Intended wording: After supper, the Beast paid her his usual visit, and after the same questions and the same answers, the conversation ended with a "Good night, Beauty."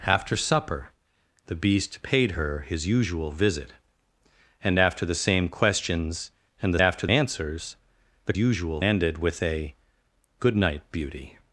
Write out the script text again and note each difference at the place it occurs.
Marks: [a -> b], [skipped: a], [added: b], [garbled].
After supper, the Beast paid her his usual visit, and after the same questions and the [same -> after] answers, the [conversation -> usual] ended with a "Good night, Beauty."